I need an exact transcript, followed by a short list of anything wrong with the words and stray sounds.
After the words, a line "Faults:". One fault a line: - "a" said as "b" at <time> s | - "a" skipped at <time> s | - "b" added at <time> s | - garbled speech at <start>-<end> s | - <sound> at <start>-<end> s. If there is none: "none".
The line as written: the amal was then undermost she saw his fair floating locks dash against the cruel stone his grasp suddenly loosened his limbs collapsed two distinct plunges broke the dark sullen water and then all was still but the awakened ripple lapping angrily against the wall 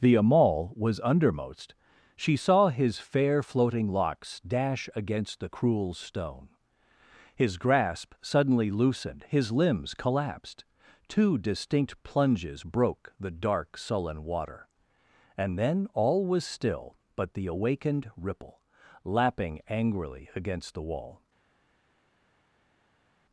the amal was undermost she saw his fair floating locks dash against the cruel stone his grasp suddenly loosened his limbs collapsed two distinct plunges broke the dark sullen water and then all was still but the awakened ripple lapping angrily against the wall
Faults:
- "then" skipped at 1.0 s